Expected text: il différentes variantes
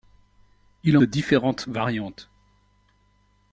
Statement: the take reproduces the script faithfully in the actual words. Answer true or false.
true